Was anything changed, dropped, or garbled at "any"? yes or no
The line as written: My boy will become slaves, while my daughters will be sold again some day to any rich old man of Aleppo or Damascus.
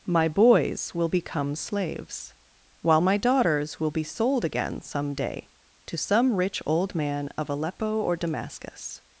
yes